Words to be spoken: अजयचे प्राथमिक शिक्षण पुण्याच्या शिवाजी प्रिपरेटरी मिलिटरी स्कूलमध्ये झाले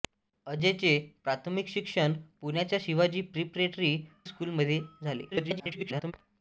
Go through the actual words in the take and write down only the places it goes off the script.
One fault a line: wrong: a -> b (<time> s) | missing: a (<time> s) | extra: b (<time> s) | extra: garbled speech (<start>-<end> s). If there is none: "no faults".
missing: मिलिटरी (4.0 s)
extra: garbled speech (5.3-6.1 s)